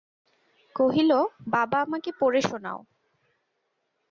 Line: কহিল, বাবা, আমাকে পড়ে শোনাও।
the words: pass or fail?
pass